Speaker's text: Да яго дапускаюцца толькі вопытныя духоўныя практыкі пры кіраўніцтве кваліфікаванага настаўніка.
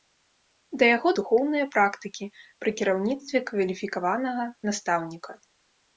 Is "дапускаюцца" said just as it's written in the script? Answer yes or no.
no